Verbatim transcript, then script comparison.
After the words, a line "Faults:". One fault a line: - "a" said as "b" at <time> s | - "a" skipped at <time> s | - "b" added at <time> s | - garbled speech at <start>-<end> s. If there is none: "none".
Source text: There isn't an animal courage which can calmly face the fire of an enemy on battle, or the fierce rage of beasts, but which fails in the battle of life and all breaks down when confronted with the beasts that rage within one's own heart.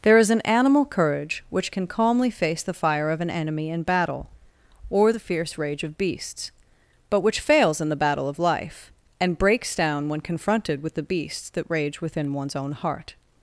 There is an animal courage which can calmly face the fire of an enemy in battle, or the fierce rage of beasts, but which fails in the battle of life and breaks down when confronted with the beasts that rage within one's own heart.
Faults:
- "isn't" said as "is" at 0.2 s
- "on" said as "in" at 3.7 s
- "all" skipped at 9.4 s